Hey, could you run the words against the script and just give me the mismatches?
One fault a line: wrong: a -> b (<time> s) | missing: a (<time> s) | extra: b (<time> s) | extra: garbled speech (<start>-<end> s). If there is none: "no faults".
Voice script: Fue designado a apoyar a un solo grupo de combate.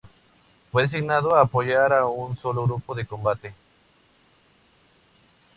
no faults